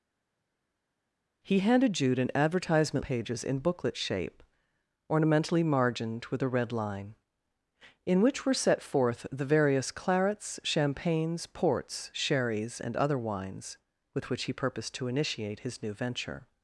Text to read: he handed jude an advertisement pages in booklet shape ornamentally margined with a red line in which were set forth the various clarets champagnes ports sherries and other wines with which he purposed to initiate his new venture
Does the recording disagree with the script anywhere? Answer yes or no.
no